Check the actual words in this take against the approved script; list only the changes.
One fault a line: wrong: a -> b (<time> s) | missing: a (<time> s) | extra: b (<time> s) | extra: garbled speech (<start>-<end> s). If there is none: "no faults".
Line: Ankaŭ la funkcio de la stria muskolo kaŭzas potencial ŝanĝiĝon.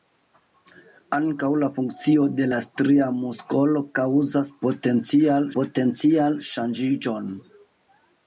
extra: potencial (5.6 s)